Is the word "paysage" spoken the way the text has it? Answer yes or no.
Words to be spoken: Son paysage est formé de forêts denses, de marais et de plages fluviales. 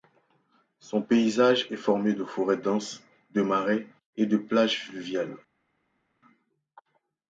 yes